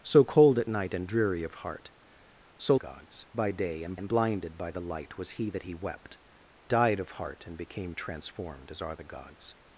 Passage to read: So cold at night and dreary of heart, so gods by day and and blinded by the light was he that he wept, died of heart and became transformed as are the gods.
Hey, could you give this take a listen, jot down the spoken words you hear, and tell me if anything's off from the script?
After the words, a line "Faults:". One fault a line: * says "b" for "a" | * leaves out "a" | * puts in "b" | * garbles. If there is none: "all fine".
So cold at night and dreary of heart, so gods by day and and blinded by the light was he that he wept, died of heart and became transformed as are the gods.
Faults:
all fine